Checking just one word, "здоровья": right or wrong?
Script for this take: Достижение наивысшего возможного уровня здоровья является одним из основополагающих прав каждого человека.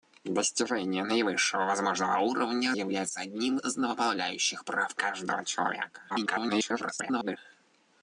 wrong